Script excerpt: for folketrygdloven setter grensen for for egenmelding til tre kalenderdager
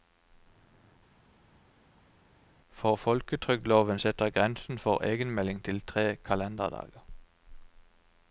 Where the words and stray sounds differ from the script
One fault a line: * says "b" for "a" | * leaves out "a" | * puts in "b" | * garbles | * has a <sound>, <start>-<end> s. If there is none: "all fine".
* leaves out "for"